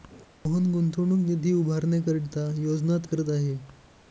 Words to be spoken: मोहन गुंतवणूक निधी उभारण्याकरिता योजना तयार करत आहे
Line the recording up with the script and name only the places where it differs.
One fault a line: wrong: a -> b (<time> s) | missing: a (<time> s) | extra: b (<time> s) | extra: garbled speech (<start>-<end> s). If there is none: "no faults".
missing: तयार (3.0 s)